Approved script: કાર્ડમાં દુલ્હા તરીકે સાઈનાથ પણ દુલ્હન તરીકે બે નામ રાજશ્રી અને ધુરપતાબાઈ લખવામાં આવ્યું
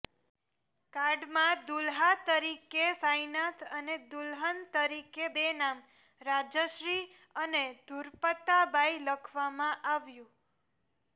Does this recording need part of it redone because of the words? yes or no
yes